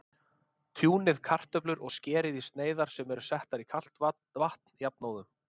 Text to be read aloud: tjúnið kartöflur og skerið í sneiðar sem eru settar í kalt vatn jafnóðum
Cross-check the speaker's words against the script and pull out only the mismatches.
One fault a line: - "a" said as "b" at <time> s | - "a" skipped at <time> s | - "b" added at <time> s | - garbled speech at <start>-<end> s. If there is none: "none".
none